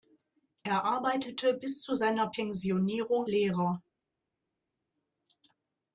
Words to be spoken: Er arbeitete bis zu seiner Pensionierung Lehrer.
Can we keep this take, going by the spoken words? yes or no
yes